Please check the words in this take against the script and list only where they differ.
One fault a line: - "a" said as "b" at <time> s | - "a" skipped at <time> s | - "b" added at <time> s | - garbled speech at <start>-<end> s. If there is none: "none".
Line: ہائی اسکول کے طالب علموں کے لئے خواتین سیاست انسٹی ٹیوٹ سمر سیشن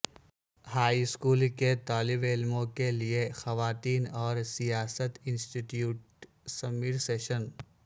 - "اور" added at 4.2 s